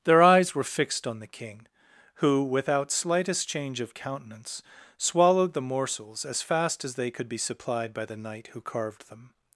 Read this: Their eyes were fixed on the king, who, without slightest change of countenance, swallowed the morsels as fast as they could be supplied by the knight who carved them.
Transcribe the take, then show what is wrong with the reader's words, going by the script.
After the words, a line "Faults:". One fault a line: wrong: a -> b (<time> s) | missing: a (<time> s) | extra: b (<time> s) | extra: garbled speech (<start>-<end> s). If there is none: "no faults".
Their eyes were fixed on the king, who, without slightest change of countenance, swallowed the morsels as fast as they could be supplied by the knight who carved them.
Faults:
no faults